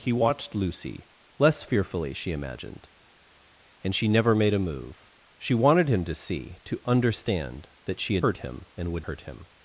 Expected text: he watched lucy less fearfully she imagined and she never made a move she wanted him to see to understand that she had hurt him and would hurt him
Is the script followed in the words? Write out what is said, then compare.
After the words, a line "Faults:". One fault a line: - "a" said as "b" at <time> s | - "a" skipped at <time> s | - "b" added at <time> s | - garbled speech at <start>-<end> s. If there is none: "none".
he watched lucy less fearfully she imagined and she never made a move she wanted him to see to understand that she had hurt him and would hurt him
Faults:
none